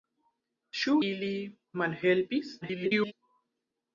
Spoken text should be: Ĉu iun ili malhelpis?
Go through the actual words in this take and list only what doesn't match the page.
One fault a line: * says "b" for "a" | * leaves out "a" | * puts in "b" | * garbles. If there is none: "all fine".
* leaves out "iun"
* garbles